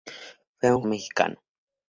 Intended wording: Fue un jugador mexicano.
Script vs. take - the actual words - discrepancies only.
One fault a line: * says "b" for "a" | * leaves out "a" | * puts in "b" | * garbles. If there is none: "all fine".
* leaves out "jugador"